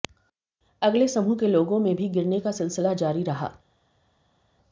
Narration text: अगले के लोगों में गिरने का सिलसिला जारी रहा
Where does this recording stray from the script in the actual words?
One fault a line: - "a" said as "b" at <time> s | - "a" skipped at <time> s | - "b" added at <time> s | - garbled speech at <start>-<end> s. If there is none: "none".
- "समूह" added at 1.1 s
- "भी" added at 1.9 s